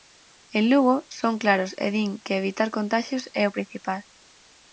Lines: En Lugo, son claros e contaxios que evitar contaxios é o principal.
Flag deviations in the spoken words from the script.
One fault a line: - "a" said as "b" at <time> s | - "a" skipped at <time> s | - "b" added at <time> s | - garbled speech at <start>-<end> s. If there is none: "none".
- "contaxios" said as "din" at 1.9 s